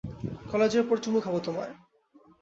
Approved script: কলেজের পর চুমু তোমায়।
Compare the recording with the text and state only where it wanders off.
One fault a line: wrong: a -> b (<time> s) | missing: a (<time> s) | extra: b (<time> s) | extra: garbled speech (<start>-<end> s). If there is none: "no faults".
extra: খাবো (1.2 s)